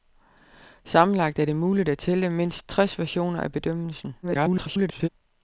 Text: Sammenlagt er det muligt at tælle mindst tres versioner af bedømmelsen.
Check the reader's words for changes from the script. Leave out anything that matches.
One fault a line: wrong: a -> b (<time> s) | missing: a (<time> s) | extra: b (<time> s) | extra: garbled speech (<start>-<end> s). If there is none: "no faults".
extra: garbled speech (4.2-5.1 s)